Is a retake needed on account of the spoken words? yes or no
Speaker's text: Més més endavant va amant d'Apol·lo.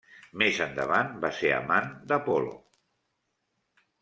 yes